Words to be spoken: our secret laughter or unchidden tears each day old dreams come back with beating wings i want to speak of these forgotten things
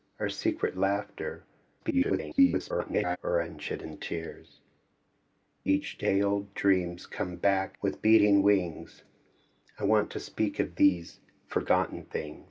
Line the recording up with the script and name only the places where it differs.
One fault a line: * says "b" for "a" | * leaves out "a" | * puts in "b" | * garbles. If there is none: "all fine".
* garbles